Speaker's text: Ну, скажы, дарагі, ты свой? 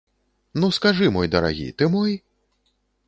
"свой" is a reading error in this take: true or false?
true